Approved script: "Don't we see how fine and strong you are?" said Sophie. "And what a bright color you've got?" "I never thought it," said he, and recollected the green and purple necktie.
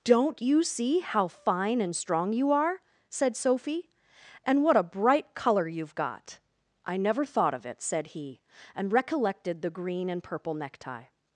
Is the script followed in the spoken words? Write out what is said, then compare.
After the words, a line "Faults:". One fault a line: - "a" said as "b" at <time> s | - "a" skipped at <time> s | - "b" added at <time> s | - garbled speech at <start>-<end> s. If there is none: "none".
"Don't you see how fine and strong you are?" said Sophie. "And what a bright color you've got?" "I never thought of it," said he, and recollected the green and purple necktie.
Faults:
- "we" said as "you" at 0.4 s
- "of" added at 7.5 s